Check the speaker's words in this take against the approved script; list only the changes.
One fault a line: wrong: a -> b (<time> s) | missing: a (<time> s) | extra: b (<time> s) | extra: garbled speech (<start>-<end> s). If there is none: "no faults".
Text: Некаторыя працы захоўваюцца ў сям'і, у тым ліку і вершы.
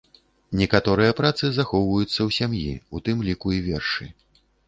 no faults